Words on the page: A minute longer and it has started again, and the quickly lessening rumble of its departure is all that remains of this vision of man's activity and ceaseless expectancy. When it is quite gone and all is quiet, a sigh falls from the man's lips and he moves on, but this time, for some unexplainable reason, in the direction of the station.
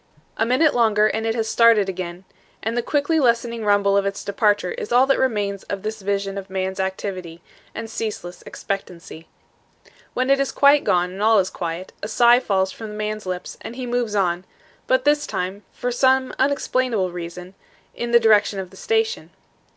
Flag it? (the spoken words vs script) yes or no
no